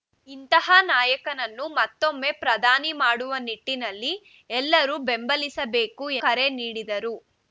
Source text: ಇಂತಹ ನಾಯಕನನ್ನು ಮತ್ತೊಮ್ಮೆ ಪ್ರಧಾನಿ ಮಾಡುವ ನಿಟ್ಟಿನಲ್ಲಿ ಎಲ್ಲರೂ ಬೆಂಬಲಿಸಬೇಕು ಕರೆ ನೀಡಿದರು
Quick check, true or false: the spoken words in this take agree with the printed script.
true